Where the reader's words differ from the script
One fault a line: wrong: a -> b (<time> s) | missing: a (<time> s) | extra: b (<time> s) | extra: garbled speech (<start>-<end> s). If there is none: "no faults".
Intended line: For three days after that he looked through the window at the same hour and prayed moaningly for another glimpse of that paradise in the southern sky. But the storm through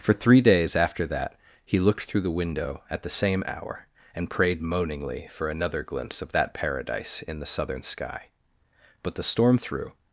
no faults